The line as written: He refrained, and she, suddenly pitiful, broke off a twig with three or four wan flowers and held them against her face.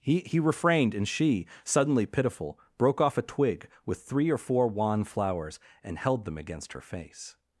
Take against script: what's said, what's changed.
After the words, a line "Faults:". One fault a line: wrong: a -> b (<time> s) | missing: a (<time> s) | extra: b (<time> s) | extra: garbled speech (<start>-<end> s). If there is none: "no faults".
He he refrained, and she, suddenly pitiful, broke off a twig with three or four wan flowers and held them against her face.
Faults:
extra: he (0.2 s)